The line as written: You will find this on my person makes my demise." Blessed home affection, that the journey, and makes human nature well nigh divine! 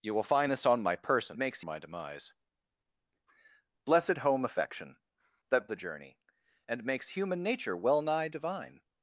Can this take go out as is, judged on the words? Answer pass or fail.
pass